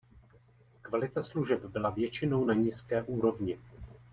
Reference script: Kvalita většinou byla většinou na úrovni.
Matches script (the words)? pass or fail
fail